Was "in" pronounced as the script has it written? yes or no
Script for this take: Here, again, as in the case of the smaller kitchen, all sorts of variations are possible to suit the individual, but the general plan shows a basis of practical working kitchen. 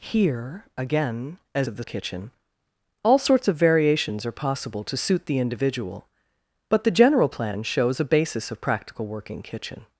no